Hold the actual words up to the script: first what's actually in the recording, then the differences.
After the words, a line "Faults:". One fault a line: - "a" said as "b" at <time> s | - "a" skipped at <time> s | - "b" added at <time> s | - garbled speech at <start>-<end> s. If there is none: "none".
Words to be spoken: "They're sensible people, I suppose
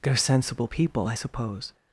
"They're sensible people, I suppose
Faults:
none